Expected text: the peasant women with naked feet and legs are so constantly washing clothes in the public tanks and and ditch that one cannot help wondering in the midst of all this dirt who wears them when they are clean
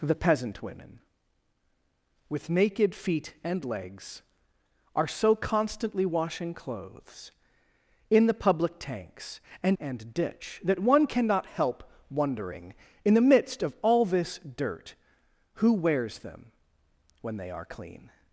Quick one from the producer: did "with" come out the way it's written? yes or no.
yes